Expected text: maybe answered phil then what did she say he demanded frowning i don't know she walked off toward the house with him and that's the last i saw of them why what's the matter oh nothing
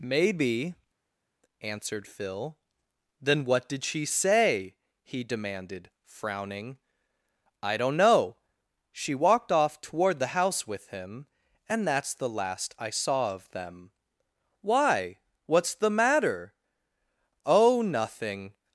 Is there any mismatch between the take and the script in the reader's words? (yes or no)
no